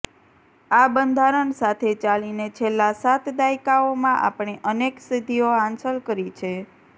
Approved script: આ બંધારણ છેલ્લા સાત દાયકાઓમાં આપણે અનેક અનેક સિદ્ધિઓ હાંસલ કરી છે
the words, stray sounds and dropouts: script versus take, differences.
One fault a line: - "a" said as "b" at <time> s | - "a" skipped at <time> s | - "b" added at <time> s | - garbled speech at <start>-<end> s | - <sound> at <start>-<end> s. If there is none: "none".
- "સાથે ચાલીને" added at 1.6 s
- "અનેક" skipped at 5.0 s